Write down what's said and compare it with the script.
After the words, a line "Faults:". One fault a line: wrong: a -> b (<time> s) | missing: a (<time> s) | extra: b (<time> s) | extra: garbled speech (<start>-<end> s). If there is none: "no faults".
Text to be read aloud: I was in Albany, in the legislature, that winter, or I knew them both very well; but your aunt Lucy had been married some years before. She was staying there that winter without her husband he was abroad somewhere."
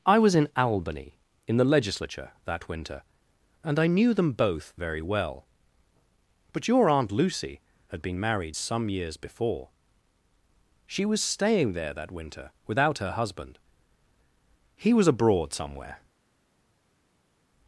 I was in Albany, in the legislature, that winter, and I knew them both very well; but your aunt Lucy had been married some years before. She was staying there that winter without her husband he was abroad somewhere."
Faults:
wrong: or -> and (3.6 s)